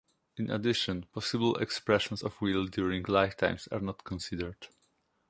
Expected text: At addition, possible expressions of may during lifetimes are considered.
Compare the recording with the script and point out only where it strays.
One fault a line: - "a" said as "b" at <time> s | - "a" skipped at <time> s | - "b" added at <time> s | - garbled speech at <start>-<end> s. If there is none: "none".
- "At" said as "In" at 0.3 s
- "may" said as "will" at 2.4 s
- "not" added at 3.8 s